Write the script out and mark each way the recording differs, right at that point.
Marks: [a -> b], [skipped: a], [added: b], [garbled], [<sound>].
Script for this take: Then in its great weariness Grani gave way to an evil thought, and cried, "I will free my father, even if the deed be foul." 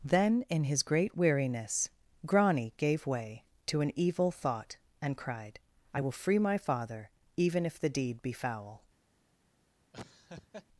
Then in [its -> his] great weariness Grani gave way to an evil thought, and cried, "I will free my father, even if the deed be foul." [laugh]